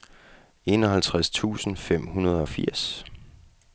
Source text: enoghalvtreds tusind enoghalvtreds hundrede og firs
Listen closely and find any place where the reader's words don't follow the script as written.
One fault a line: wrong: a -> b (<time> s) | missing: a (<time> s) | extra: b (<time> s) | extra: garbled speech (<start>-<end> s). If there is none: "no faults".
wrong: enoghalvtreds -> fem (1.8 s)